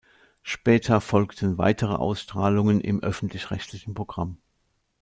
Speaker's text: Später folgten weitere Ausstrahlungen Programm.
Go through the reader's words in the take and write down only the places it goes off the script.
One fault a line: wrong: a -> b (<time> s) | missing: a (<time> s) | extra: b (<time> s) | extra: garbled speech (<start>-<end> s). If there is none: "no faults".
extra: im öffentlich rechtlichen (2.8 s)